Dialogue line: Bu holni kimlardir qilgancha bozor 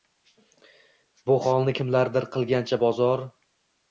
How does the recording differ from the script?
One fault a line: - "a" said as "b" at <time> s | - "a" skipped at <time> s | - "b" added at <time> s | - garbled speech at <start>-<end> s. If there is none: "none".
none